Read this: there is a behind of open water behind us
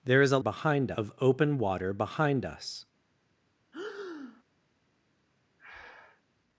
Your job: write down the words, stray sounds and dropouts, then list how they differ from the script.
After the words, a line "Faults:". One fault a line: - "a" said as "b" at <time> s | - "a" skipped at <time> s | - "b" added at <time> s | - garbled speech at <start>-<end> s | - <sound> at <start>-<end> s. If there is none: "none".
there is a behind of open water behind us
Faults:
- breath at 3.7-4.4 s
- breath at 5.6-6.2 s